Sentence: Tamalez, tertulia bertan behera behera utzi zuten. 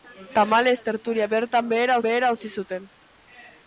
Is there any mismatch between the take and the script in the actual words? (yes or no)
no